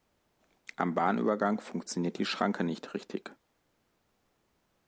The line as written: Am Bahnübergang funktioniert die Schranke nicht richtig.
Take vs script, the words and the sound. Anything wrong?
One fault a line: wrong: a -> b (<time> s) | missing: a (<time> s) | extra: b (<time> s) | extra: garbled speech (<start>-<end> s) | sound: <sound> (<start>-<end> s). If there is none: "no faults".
no faults